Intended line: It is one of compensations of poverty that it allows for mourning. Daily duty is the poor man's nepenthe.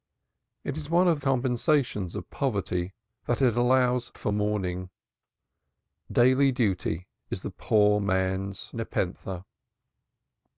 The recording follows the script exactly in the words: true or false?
true